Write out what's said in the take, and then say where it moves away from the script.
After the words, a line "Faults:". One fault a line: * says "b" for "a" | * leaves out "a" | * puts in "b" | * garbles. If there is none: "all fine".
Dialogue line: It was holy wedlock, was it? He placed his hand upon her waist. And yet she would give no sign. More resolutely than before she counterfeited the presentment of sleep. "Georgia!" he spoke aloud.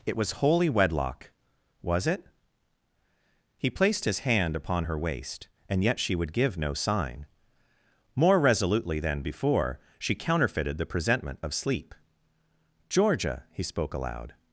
It was holy wedlock, was it? He placed his hand upon her waist. And yet she would give no sign. More resolutely than before she counterfeited the presentment of sleep. "Georgia!" he spoke aloud.
Faults:
all fine